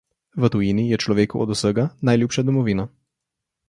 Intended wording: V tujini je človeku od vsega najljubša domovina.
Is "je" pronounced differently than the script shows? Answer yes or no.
no